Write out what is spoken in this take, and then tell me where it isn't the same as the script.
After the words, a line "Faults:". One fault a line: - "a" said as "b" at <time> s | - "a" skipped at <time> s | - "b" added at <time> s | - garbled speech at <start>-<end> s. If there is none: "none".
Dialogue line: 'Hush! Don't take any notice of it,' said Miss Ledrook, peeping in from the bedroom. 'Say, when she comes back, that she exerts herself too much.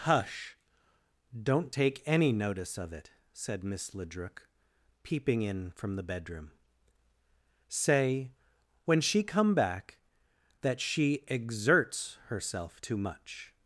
'Hush! Don't take any notice of it,' said Miss Ledrook, peeping in from the bedroom. 'Say, when she come back, that she exerts herself too much.
Faults:
- "comes" said as "come" at 9.2 s